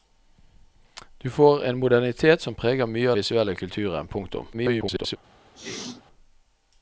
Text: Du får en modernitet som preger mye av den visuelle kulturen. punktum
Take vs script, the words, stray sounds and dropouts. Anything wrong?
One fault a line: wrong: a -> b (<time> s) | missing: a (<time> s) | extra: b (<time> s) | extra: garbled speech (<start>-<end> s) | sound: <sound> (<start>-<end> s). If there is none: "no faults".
missing: den (3.1 s)
extra: garbled speech (4.5-5.2 s)
sound: sneeze (5.5-6.0 s)